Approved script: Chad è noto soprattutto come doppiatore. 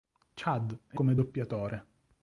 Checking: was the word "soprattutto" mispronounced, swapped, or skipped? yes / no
yes